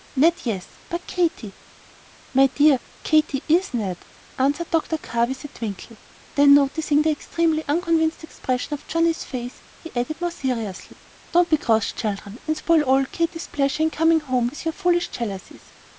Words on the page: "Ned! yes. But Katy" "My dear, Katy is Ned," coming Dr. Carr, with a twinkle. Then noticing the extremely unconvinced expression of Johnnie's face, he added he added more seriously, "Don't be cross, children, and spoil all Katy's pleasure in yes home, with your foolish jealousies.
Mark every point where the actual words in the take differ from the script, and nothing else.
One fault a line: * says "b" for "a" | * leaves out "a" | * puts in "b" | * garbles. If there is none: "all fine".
* says "answered" for "coming"
* leaves out "he added"
* says "coming" for "yes"